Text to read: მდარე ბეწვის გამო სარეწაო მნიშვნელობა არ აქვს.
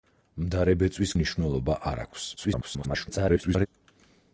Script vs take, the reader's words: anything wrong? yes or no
yes